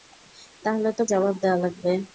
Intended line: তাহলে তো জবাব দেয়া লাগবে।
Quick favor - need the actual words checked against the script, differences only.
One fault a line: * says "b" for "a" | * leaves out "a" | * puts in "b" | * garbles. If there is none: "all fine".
all fine